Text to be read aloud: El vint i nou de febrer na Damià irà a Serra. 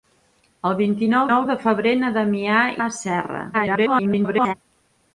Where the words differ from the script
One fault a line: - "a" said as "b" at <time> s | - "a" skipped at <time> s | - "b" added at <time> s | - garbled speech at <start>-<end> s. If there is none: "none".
- "nou" added at 1.3 s
- "irà" skipped at 2.6 s
- garbled speech at 3.5-4.5 s